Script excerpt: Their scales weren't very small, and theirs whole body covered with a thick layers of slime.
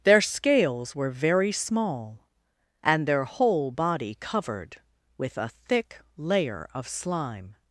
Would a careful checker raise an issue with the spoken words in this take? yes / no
yes